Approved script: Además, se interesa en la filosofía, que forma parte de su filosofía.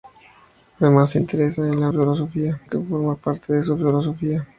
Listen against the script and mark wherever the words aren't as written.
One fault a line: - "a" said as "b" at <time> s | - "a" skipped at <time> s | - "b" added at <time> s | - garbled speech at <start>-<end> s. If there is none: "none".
none